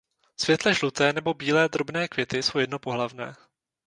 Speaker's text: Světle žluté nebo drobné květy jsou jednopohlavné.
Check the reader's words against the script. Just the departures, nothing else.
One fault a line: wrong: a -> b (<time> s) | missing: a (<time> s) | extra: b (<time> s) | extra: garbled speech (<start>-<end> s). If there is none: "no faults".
extra: bílé (1.3 s)